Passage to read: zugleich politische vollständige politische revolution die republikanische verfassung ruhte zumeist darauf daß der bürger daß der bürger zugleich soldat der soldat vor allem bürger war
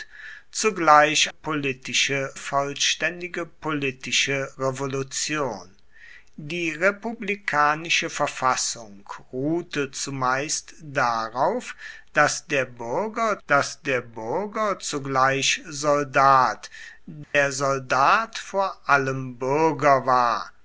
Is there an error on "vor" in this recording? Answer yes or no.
no